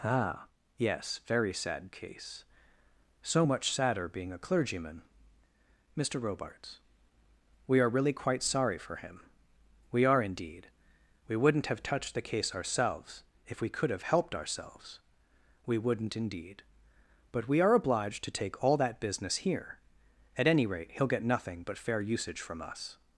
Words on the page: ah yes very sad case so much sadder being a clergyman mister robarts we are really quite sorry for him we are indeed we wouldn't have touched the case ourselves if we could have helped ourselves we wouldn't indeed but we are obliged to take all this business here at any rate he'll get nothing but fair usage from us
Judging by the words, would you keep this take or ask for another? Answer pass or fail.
fail